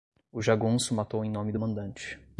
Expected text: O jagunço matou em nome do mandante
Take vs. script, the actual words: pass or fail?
pass